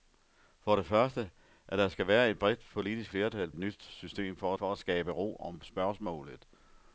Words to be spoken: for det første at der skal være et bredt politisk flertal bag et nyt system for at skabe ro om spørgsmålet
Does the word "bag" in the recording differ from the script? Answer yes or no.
yes